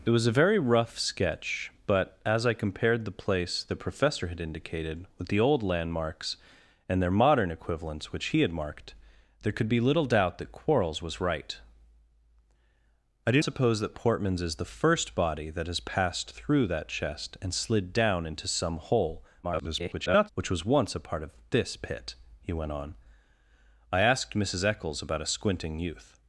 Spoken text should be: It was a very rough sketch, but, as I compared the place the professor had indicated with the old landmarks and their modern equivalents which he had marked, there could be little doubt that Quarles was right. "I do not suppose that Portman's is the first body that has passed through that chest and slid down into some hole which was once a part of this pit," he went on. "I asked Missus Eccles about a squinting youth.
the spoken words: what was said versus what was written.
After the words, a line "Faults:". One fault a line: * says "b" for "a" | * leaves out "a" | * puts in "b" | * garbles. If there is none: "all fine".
It was a very rough sketch, but, as I compared the place the professor had indicated with the old landmarks and their modern equivalents which he had marked, there could be little doubt that Quarles was right. "I do suppose that Portman's is the first body that has passed through that chest and slid down into some hole [garbled] which was once a part of this pit," he went on. "I asked Missus Eccles about a squinting youth.
Faults:
* leaves out "not"
* garbles